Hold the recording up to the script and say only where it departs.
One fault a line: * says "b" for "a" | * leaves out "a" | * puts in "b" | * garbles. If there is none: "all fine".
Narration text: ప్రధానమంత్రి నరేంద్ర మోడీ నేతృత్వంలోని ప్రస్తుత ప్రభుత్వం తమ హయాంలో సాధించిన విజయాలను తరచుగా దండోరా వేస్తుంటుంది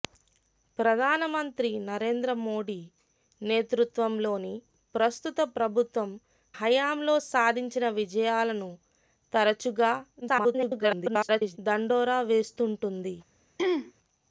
* leaves out "తమ"
* garbles